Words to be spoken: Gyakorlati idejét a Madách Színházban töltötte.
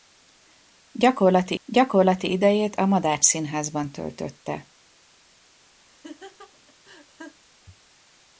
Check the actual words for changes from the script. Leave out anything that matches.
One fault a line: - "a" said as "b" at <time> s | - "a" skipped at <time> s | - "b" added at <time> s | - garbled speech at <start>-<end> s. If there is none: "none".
- "gyakorlati" added at 1.6 s